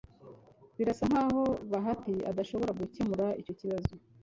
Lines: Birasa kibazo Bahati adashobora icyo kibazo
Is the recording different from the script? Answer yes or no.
yes